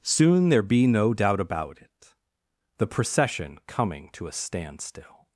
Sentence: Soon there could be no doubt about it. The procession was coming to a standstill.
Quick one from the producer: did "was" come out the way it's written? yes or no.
no